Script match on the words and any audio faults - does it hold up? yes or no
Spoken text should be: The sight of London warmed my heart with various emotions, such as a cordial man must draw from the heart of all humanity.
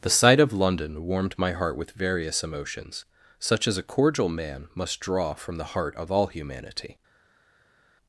yes